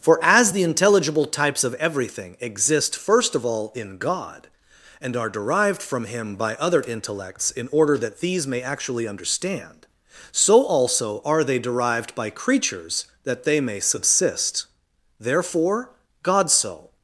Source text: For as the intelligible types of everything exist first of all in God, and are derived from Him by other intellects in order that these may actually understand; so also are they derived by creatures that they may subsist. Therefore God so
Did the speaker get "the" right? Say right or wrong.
right